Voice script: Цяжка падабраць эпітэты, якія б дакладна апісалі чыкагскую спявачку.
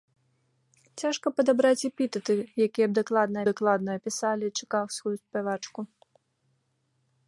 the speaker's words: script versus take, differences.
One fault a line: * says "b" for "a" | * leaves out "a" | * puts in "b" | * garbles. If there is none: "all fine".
* puts in "дакладна"